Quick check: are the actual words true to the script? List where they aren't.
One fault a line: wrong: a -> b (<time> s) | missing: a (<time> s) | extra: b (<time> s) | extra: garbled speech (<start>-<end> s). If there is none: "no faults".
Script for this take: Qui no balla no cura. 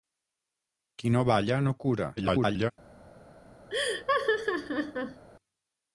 extra: garbled speech (2.2-2.7 s)